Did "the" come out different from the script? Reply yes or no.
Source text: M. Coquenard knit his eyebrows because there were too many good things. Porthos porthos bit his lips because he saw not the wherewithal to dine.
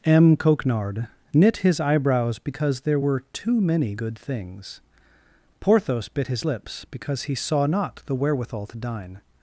no